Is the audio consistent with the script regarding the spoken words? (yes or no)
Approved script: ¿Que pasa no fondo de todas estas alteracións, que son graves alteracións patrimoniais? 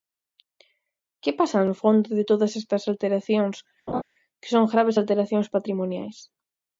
yes